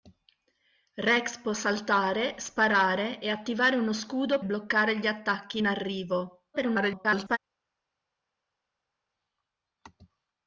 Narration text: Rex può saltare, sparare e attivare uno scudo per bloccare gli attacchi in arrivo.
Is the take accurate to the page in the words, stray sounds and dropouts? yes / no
no